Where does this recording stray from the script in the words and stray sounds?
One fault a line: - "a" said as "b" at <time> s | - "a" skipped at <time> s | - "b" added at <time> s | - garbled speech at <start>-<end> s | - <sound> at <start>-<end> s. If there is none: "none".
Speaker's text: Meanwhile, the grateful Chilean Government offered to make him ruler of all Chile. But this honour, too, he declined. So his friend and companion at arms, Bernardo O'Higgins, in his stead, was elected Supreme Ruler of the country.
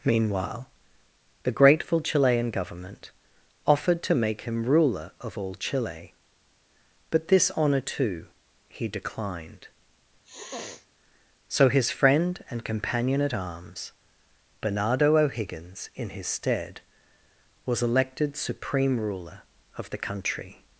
- sniff at 10.2-10.9 s